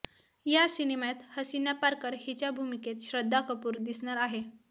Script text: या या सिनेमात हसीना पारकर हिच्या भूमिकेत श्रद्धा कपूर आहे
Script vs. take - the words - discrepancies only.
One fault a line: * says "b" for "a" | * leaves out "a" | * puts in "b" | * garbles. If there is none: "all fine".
* leaves out "या"
* puts in "दिसणार"